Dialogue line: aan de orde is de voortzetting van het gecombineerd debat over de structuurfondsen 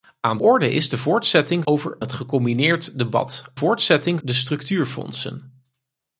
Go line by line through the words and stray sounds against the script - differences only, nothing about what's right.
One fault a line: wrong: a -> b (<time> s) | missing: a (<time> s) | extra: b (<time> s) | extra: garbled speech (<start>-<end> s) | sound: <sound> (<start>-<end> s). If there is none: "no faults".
missing: de (0.4 s)
wrong: van -> over (1.6 s)
wrong: over -> voortzetting (3.5 s)